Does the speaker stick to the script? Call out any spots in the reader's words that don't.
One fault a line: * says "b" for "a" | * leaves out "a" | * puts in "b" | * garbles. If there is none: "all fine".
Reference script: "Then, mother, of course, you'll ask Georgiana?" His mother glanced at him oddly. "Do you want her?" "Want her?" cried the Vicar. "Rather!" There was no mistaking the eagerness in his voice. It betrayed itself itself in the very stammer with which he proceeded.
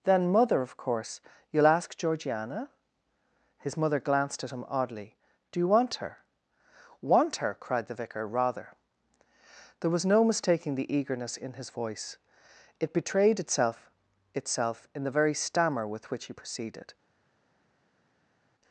all fine